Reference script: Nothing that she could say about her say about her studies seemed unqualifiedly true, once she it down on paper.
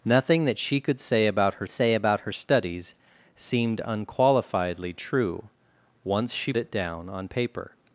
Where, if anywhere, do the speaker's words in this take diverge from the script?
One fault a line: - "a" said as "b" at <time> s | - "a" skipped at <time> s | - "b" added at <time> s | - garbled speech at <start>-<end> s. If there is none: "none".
none